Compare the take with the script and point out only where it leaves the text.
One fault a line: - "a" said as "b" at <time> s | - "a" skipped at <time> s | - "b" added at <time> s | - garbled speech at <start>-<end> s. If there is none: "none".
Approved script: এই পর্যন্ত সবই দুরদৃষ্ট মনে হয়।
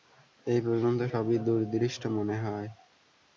none